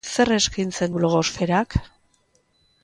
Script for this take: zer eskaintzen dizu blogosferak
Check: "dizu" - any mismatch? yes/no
yes